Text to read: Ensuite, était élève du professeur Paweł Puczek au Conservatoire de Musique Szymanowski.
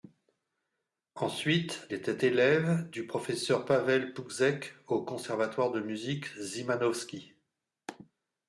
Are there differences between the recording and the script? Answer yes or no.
no